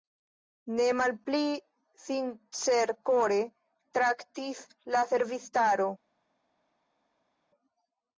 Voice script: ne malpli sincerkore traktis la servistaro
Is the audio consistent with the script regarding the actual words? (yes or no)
yes